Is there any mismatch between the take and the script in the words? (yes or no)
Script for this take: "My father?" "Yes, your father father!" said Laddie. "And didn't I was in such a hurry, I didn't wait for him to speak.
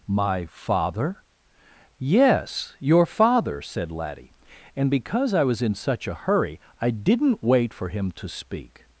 yes